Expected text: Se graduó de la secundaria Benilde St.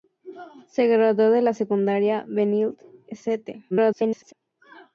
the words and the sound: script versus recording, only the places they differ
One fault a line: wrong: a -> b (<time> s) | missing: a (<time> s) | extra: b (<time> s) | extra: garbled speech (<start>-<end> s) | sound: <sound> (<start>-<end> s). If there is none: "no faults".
extra: garbled speech (3.7-4.3 s)